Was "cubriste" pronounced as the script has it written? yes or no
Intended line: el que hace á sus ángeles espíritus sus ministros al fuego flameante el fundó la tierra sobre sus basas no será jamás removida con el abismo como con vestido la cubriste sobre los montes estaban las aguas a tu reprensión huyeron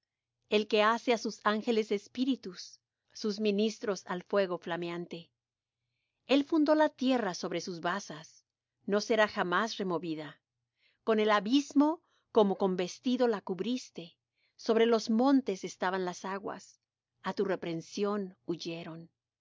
yes